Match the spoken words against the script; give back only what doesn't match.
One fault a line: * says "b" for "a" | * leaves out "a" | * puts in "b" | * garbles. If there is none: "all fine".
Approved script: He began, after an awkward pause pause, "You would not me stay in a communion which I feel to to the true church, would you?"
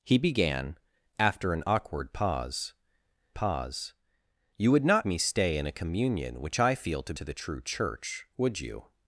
all fine